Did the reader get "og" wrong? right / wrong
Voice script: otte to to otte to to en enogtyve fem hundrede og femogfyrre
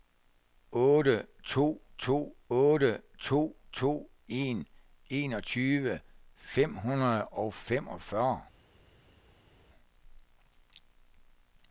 right